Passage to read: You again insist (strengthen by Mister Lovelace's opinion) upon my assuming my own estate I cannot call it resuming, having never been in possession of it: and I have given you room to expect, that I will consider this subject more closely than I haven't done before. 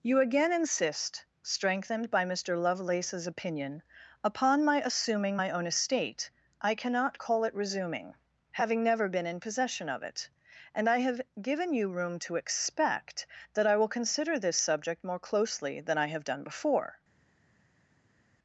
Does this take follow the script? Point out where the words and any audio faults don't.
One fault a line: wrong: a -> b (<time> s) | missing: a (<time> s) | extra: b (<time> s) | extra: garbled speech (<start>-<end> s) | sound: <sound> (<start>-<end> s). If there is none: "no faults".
wrong: strengthen -> strengthened (1.4 s)
wrong: haven't -> have (16.1 s)